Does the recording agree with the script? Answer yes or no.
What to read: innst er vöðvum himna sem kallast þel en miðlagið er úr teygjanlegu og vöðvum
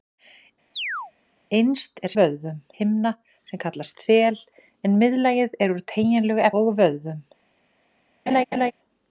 yes